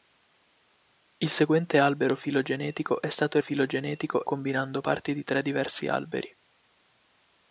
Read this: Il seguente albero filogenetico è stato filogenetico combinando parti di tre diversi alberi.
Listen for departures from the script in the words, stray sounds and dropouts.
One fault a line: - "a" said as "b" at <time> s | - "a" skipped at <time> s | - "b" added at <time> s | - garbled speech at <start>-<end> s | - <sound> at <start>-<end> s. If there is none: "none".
none